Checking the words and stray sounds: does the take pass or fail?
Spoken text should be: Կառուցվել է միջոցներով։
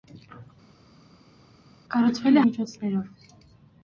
pass